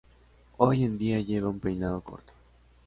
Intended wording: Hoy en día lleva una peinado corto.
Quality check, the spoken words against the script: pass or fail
fail